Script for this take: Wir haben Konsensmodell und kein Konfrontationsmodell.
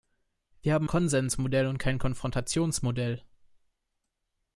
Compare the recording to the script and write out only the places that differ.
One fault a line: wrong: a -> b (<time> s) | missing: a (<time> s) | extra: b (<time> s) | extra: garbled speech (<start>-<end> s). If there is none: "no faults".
no faults